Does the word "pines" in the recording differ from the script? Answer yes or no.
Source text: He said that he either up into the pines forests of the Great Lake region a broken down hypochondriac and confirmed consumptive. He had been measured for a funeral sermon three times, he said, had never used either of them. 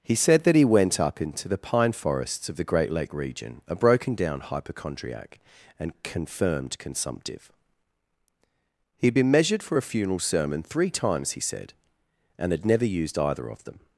yes